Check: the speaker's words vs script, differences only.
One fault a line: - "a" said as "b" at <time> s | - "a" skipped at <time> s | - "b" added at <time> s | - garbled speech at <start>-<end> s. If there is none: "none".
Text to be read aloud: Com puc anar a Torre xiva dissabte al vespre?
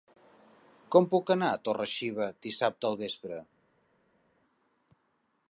none